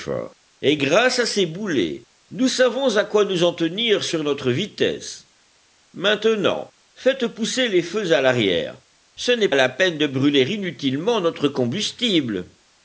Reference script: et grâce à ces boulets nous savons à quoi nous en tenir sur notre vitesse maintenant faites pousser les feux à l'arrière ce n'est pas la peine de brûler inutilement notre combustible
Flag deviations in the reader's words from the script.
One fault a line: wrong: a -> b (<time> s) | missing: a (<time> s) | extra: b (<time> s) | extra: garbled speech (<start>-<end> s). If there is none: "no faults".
missing: pas (9.5 s)